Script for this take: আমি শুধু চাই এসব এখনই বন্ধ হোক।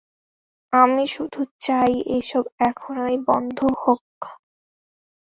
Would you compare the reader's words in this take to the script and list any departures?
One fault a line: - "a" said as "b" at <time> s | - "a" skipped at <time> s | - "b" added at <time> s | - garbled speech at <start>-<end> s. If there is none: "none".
none